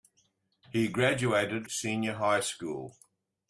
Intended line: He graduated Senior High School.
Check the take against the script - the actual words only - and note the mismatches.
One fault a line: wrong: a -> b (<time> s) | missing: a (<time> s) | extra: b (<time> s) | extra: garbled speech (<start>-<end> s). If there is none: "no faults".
no faults